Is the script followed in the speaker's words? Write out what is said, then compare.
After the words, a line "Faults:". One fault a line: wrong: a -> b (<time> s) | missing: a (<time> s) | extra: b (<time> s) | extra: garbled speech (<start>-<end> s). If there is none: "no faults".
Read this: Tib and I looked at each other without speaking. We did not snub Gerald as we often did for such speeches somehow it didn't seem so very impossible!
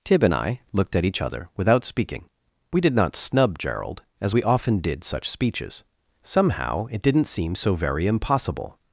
Tib and I looked at each other without speaking. We did not snub Gerald as we often did such speeches somehow it didn't seem so very impossible!
Faults:
missing: for (5.0 s)